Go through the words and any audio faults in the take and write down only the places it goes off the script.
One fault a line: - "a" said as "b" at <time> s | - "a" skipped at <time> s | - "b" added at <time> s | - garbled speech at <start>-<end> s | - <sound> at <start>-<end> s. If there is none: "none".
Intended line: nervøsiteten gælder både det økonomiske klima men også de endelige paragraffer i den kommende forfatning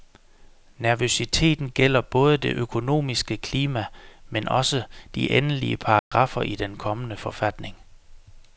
- dropout at 6.0-6.1 s